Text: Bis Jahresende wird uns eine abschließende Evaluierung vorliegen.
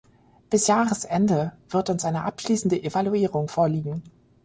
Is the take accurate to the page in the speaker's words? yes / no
yes